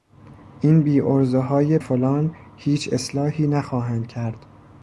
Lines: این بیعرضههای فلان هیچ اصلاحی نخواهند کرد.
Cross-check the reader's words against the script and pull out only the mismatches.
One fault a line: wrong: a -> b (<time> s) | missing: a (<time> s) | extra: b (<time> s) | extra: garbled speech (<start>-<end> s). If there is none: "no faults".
no faults